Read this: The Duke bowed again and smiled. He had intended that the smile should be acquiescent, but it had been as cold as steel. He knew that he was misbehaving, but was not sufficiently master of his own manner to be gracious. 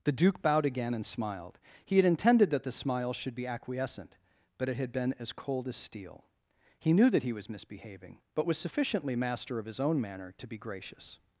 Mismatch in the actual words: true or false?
true